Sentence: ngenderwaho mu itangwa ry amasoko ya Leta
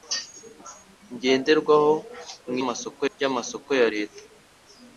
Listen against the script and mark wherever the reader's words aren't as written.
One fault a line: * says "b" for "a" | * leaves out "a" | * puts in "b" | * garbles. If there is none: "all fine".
* says "amasoko" for "itangwa"